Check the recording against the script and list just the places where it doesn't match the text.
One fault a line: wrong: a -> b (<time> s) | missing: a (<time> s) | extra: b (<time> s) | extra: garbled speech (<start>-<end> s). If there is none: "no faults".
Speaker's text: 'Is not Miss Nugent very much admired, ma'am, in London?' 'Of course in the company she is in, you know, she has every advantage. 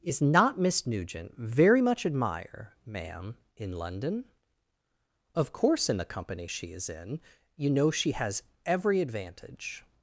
wrong: admired -> admire (2.0 s)